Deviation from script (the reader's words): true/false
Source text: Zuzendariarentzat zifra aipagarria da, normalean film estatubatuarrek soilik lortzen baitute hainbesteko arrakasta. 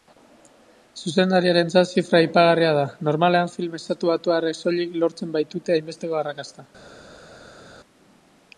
false